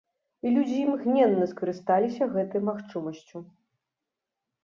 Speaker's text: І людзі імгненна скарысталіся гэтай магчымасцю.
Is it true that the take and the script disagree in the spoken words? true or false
false